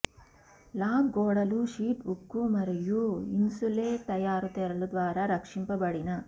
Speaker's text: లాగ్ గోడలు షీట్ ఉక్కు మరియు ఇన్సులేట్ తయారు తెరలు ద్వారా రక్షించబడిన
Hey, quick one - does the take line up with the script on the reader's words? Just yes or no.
yes